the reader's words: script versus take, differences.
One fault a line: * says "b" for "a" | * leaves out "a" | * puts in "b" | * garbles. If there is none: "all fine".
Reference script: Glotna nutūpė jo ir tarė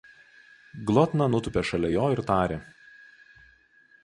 * puts in "šalia"